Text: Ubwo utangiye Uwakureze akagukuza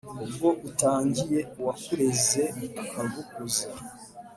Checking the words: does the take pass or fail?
pass